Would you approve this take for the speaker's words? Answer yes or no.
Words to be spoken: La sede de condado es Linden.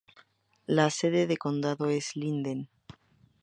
yes